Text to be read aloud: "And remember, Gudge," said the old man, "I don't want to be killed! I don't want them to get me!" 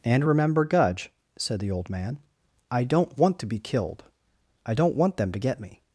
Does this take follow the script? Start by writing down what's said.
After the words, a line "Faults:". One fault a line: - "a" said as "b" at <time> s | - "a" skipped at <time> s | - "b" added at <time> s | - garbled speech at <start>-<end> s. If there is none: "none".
"And remember, Gudge," said the old man, "I don't want to be killed! I don't want them to get me!"
Faults:
none